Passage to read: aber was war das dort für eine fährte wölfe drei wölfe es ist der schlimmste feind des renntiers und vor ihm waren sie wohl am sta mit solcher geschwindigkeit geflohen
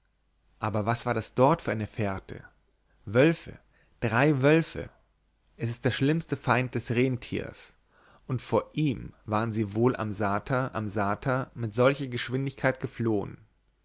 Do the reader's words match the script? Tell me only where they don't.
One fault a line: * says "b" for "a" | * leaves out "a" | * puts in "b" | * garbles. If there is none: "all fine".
* puts in "am sta"